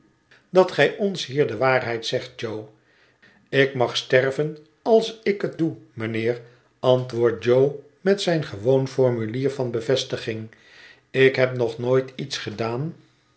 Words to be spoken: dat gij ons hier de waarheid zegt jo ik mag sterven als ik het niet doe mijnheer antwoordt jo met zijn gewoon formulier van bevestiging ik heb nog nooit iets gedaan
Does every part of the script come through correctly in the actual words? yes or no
no